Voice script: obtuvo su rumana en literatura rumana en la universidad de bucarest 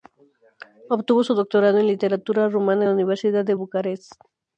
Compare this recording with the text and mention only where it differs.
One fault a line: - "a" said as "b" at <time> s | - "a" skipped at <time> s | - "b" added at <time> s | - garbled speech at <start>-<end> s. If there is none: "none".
- "rumana" said as "doctorado" at 1.4 s